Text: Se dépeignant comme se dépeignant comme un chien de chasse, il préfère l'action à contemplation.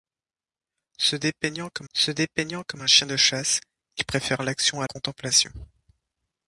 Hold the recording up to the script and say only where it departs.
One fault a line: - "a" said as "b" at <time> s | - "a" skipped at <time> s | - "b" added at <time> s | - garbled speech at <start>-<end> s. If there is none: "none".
none